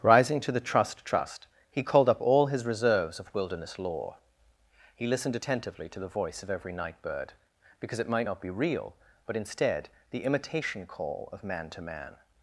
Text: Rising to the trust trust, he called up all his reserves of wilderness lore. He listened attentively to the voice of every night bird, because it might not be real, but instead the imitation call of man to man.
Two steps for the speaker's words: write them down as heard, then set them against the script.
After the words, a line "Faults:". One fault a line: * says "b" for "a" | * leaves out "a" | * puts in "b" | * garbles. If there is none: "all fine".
Rising to the trust trust, he called up all his reserves of wilderness lore. He listened attentively to the voice of every night bird, because it might not be real, but instead the imitation call of man to man.
Faults:
all fine